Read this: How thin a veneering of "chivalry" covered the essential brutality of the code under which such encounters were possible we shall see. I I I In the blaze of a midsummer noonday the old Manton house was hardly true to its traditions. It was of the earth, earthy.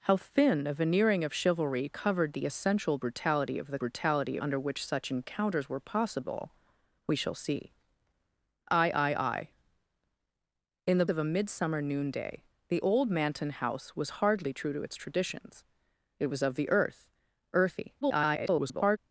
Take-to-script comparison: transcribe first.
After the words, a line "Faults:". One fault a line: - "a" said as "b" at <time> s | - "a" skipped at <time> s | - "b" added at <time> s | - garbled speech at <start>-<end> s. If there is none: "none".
How thin a veneering of "chivalry" covered the essential brutality of the brutality under which such encounters were possible we shall see. I I I In the of a midsummer noonday the old Manton house was hardly true to its traditions. It was of the earth, earthy. [garbled]
Faults:
- "code" said as "brutality" at 3.8 s
- "blaze" skipped at 11.1 s
- garbled speech at 18.0-19.0 s